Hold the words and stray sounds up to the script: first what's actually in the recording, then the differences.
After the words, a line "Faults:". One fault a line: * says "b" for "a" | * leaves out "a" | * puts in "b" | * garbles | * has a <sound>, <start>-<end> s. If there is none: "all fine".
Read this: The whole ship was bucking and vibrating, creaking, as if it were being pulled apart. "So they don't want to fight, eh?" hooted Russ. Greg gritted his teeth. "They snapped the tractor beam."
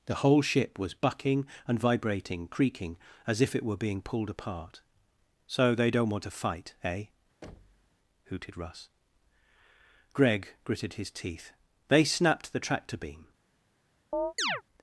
The whole ship was bucking and vibrating, creaking, as if it were being pulled apart. "So they don't want to fight, eh?" hooted Russ. Greg gritted his teeth. "They snapped the tractor beam."
Faults:
* has a thud, 7.4-7.9 s
* has a chirp, 14.1-14.6 s